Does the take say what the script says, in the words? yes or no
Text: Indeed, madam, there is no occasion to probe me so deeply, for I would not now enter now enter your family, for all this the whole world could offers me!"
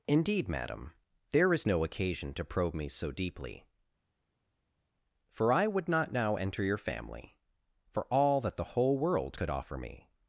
no